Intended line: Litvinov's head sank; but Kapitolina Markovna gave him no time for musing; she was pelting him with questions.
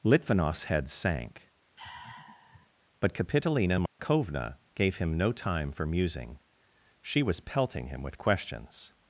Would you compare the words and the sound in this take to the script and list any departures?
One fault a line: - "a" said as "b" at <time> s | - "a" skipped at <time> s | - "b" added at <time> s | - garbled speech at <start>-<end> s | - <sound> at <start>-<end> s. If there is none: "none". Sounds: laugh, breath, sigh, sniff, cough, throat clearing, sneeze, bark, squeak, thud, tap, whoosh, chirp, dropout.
- sigh at 1.8-2.7 s
- dropout at 3.9-4.0 s